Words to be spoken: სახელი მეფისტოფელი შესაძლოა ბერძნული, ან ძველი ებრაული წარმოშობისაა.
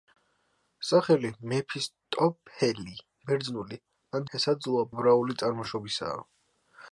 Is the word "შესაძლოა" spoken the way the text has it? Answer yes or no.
no